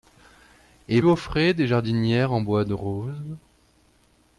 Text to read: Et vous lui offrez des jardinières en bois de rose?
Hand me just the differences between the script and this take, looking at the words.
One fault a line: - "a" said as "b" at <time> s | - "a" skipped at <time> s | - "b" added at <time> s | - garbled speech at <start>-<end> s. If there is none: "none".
- "vous lui" skipped at 1.0 s